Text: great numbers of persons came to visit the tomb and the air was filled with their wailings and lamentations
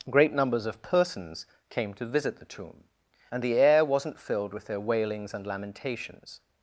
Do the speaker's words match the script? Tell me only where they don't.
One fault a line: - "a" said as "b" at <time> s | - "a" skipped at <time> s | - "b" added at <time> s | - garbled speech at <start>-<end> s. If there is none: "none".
- "was" said as "wasn't" at 3.8 s